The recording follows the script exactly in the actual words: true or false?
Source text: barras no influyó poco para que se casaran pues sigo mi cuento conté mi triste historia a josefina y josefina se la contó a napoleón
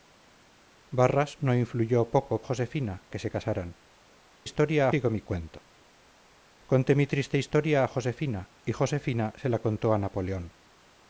false